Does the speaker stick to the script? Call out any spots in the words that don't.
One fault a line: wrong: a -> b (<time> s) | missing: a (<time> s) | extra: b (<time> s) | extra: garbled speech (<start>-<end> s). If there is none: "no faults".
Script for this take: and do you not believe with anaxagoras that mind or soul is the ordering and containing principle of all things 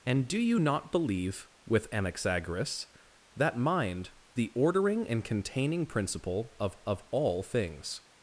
missing: or soul is (4.1 s)
extra: of (6.9 s)